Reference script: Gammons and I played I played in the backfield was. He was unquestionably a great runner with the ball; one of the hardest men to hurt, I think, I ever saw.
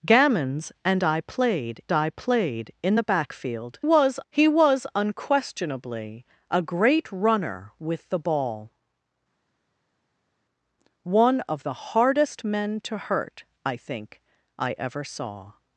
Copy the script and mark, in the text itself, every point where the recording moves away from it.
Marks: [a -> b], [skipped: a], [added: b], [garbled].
Gammons and I played I played in the backfield was. He was unquestionably a great runner with the ball; one of the hardest men to hurt, I think, I ever saw.